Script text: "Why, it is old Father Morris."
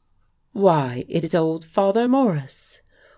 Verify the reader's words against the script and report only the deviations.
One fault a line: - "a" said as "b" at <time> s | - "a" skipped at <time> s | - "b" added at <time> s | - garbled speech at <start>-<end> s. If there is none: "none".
none